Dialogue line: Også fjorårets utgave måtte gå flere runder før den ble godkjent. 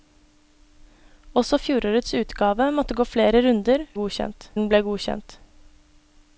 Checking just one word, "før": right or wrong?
wrong